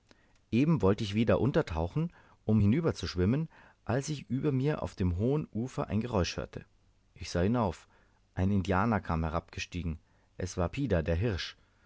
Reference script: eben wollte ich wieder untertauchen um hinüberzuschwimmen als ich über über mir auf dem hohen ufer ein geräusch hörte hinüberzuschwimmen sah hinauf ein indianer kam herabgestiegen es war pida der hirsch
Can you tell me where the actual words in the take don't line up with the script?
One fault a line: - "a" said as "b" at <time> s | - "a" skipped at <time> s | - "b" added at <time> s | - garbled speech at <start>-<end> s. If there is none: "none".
- "über" skipped at 4.5 s
- "hinüberzuschwimmen" said as "ich" at 7.1 s